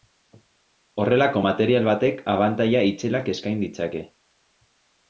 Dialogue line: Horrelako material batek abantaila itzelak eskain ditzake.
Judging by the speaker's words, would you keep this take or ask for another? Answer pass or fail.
pass